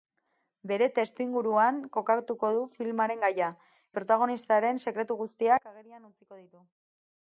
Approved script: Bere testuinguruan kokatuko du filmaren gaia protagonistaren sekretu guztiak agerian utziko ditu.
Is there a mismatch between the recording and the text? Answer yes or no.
no